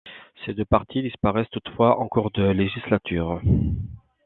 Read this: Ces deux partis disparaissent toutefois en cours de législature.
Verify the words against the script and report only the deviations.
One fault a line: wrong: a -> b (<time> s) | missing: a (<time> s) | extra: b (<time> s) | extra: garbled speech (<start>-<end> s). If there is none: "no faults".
no faults